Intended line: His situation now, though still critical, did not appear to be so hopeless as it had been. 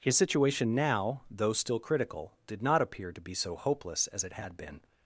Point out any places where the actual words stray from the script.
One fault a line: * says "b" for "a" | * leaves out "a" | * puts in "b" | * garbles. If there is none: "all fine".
all fine